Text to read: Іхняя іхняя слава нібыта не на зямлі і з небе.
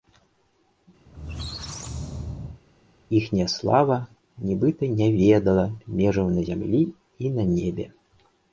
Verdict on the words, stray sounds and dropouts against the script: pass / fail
fail